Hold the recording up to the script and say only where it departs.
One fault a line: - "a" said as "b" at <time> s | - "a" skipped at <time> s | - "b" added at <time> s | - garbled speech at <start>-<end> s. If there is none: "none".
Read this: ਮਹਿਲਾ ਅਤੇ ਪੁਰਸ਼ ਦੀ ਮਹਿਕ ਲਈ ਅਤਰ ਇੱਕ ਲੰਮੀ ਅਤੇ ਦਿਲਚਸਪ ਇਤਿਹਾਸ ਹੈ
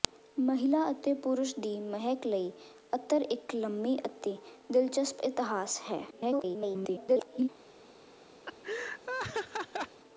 - garbled speech at 6.1-7.5 s